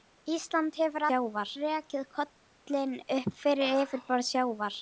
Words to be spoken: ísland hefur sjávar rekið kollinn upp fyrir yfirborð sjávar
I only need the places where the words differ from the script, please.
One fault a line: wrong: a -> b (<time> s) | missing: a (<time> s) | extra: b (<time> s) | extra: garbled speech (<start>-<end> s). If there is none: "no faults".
no faults